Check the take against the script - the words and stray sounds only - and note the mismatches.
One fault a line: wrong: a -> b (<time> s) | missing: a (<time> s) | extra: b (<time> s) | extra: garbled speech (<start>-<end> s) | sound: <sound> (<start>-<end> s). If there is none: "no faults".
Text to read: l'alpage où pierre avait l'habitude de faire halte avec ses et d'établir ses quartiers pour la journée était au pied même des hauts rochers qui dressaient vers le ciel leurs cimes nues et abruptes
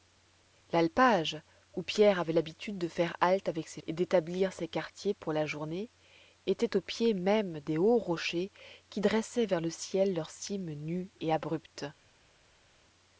no faults